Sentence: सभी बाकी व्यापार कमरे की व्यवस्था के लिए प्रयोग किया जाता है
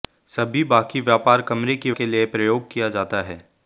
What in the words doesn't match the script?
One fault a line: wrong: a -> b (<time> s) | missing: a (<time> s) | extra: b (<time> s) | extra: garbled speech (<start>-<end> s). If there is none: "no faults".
missing: व्यवस्था (1.9 s)